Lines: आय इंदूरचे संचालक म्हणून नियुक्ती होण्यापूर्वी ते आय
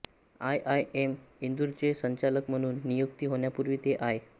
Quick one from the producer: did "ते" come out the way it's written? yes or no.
yes